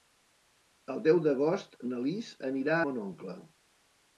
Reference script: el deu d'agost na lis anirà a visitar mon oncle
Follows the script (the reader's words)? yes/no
no